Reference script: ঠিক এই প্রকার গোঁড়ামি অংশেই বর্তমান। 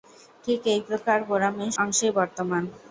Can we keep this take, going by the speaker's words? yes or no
yes